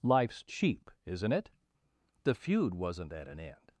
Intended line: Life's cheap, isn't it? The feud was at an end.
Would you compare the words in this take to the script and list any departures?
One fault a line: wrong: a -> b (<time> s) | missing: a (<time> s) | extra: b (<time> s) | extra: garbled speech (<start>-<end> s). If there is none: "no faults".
wrong: was -> wasn't (2.7 s)